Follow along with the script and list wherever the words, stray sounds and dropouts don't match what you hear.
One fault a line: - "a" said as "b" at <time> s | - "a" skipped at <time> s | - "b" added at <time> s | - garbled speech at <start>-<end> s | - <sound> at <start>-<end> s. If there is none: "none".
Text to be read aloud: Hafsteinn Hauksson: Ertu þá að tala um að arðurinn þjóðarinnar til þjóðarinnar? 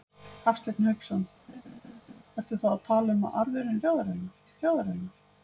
- laugh at 1.5-2.2 s